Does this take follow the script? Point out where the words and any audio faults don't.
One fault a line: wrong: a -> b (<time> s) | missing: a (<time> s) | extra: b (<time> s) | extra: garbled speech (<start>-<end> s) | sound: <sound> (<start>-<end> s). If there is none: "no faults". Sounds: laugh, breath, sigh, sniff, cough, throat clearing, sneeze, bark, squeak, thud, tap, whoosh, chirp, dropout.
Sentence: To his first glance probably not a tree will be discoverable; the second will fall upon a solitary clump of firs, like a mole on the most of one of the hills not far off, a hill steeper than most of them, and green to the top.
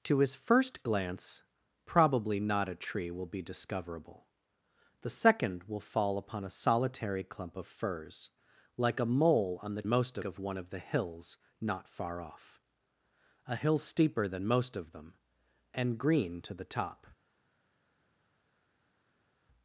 no faults